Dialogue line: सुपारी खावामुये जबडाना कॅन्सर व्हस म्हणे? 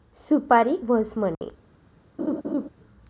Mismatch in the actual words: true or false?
true